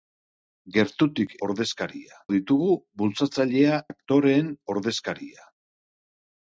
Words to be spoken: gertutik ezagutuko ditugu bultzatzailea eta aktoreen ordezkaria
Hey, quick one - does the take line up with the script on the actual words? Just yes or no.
no